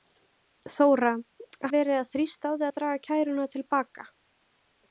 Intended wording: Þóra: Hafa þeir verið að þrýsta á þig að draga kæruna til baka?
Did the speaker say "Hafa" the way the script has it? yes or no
no